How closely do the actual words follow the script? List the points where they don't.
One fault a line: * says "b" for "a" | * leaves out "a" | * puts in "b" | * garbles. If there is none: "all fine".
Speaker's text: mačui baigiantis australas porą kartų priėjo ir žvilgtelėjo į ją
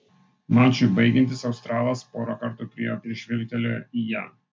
all fine